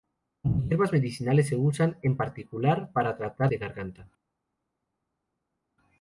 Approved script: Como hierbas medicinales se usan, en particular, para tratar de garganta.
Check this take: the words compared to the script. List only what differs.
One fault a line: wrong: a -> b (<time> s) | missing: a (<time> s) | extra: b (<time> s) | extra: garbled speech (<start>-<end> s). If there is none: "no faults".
no faults